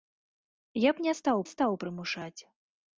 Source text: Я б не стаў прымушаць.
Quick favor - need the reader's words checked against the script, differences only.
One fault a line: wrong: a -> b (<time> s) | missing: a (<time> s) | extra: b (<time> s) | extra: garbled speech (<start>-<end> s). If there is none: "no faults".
extra: стаў (1.5 s)